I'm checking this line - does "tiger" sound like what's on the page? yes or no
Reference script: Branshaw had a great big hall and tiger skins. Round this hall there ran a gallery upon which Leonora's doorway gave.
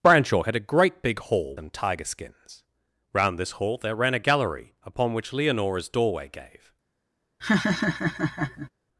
yes